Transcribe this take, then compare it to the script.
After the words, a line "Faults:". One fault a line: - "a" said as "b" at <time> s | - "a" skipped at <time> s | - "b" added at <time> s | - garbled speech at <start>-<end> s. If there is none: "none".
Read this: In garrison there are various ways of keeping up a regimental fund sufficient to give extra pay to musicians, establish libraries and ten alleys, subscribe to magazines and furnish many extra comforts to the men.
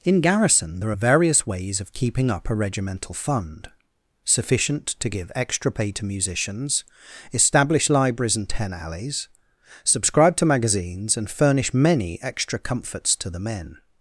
In garrison there are various ways of keeping up a regimental fund sufficient to give extra pay to musicians, establish libraries and ten alleys, subscribe to magazines and furnish many extra comforts to the men.
Faults:
none